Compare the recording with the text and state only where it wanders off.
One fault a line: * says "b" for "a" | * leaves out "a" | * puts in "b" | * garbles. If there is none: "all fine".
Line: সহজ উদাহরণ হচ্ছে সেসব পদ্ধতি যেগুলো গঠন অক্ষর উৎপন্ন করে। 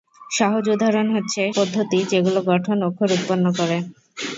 * leaves out "সেসব"